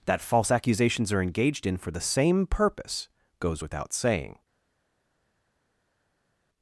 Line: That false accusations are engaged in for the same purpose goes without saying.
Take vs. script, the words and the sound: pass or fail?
pass